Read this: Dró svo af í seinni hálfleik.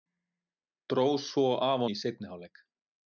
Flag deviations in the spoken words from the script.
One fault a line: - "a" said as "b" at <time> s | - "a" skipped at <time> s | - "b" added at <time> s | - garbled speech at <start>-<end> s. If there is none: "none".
none